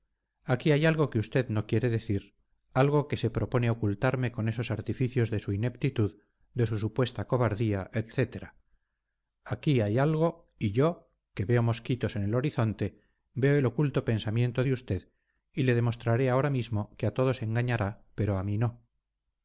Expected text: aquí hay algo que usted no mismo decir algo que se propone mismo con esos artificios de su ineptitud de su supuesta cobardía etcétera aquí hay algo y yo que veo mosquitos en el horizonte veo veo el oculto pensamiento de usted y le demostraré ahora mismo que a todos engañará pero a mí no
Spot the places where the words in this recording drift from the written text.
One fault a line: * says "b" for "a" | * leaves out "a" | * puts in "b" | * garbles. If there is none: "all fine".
* says "quiere" for "mismo"
* says "ocultarme" for "mismo"
* leaves out "veo"